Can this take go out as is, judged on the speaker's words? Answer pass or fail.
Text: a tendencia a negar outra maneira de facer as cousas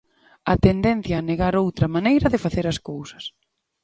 pass